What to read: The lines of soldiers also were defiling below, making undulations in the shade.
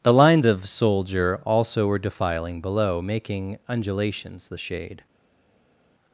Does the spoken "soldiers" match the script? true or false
false